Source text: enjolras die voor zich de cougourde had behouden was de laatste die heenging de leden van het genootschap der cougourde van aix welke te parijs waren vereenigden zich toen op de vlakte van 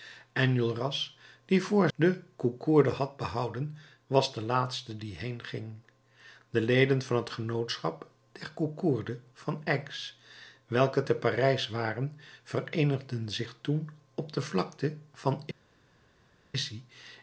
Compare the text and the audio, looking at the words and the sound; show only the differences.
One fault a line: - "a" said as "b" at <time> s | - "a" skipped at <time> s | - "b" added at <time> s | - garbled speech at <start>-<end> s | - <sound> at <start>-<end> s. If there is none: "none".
- "zich" skipped at 1.9 s